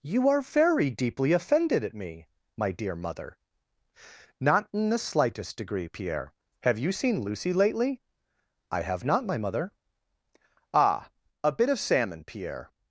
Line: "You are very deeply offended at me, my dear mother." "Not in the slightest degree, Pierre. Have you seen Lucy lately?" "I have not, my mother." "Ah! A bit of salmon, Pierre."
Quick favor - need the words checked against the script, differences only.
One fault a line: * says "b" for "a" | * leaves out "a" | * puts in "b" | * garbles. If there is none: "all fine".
all fine